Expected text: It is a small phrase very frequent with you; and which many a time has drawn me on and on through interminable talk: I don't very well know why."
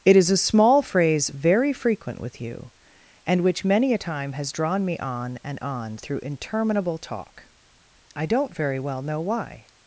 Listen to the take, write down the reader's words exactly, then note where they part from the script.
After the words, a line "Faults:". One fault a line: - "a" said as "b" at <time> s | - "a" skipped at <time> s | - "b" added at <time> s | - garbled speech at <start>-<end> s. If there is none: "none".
It is a small phrase very frequent with you; and which many a time has drawn me on and on through interminable talk: I don't very well know why."
Faults:
none